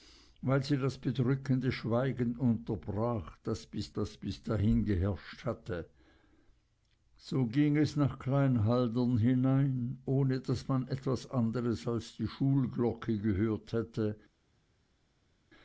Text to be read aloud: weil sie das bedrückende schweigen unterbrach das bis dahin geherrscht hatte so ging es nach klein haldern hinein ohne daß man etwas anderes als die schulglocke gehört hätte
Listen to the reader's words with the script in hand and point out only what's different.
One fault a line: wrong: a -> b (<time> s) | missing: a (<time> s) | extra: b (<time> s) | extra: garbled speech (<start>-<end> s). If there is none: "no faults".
extra: das bis (3.9 s)